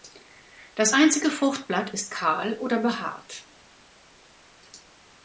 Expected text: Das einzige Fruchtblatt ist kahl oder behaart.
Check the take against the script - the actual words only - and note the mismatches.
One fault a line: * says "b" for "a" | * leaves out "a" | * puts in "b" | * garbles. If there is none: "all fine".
all fine